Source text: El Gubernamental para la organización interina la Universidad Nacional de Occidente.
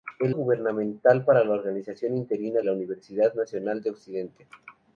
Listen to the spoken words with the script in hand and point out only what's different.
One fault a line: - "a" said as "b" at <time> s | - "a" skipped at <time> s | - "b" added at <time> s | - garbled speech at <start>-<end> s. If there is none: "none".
none